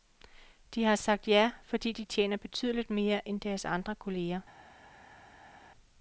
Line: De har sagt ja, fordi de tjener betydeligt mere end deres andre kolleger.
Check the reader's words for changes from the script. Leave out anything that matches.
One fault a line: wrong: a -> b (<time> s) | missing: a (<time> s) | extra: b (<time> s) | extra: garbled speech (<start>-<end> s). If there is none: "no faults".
no faults